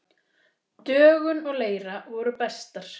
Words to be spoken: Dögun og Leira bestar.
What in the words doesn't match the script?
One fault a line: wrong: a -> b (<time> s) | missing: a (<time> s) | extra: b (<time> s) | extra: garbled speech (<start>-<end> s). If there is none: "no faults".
extra: voru (2.1 s)